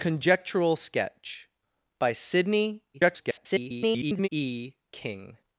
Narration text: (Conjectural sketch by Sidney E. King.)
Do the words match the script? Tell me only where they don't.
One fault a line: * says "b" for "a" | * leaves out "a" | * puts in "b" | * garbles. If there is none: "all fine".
* garbles